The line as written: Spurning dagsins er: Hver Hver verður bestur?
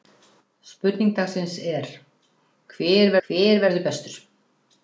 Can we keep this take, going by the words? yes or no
yes